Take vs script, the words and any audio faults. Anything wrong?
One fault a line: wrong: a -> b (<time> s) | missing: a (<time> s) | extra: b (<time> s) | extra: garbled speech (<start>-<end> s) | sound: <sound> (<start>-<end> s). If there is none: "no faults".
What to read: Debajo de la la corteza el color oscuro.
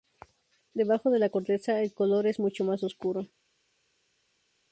missing: la (1.3 s)
extra: es mucho más (2.3 s)